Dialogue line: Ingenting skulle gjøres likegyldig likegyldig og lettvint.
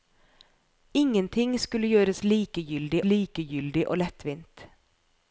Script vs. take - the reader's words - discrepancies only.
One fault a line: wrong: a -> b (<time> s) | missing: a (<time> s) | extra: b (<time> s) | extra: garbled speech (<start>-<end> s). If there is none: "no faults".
no faults